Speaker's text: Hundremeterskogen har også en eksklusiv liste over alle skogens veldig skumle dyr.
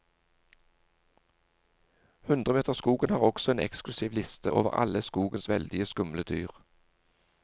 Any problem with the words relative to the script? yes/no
no